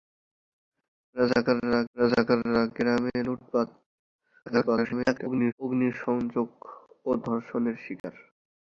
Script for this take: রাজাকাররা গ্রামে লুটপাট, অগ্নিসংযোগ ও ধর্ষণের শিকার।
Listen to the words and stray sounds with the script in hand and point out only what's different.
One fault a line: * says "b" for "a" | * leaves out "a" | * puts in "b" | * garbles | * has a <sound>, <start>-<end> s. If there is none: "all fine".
* puts in "রাজাকাররা"
* garbles
* has a dropout, 8.0-8.0 s